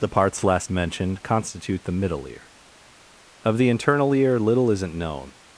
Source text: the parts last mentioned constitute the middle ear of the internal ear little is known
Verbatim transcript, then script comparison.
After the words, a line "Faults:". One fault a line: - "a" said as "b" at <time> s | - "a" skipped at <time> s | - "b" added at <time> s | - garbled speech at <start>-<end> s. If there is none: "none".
the parts last mentioned constitute the middle ear of the internal ear little isn't known
Faults:
- "is" said as "isn't" at 4.7 s